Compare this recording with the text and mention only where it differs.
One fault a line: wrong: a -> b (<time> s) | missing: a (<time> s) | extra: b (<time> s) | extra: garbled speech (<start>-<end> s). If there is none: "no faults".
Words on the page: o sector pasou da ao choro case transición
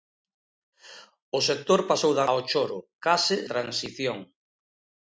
no faults